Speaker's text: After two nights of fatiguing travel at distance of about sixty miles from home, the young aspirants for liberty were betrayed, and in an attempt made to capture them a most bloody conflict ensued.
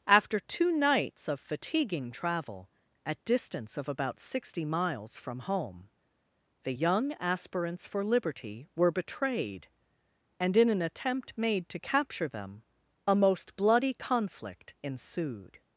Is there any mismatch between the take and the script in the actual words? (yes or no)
no